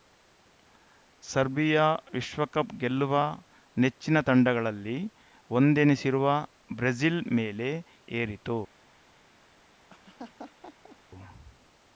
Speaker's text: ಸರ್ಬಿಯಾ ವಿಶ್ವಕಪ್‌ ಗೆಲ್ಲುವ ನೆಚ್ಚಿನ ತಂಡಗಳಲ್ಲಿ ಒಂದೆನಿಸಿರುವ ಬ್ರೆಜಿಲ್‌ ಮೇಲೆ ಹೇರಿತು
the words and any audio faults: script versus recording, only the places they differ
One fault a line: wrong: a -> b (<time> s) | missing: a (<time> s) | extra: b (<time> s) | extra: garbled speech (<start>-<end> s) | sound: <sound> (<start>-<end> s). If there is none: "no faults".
sound: laugh (9.9-11.0 s)